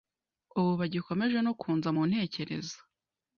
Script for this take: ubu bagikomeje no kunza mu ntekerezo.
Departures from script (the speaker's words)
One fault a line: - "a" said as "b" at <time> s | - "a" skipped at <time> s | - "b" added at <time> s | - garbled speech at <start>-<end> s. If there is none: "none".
none